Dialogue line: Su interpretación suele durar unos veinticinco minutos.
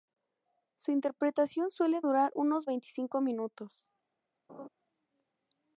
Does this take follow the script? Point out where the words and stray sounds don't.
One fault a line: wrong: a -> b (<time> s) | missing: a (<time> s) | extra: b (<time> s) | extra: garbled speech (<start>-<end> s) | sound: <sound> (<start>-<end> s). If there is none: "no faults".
sound: laugh (4.5-4.7 s)